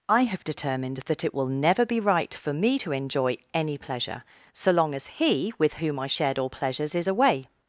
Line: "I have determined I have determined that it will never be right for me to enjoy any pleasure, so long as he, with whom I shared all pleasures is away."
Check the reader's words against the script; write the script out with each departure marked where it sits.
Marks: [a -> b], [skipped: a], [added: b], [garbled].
"I have determined [skipped: I have determined] that it will never be right for me to enjoy any pleasure, so long as he, with whom I shared all pleasures is away."